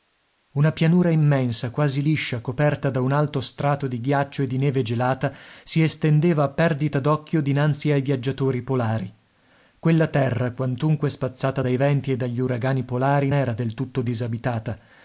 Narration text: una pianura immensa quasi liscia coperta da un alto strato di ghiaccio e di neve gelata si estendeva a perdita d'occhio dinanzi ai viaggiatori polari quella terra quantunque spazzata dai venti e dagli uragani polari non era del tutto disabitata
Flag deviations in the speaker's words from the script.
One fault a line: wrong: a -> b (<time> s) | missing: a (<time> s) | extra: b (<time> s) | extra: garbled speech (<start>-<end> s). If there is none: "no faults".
missing: non (13.3 s)